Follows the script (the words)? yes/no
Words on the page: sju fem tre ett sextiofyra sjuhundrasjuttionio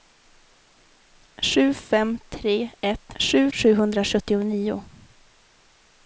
no